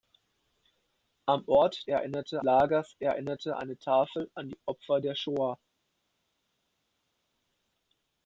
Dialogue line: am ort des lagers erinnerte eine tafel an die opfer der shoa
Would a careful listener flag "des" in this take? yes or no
yes